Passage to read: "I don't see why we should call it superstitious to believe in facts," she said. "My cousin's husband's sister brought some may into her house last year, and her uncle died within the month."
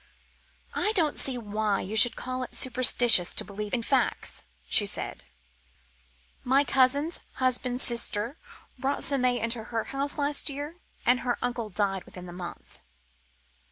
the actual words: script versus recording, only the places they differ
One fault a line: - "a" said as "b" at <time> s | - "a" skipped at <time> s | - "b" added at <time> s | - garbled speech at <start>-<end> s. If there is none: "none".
- "we" said as "you" at 1.8 s